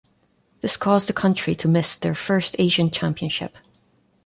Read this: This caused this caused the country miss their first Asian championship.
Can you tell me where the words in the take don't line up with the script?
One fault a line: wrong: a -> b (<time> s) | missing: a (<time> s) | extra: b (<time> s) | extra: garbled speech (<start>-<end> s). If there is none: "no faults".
missing: this caused (1.1 s)
extra: to (1.6 s)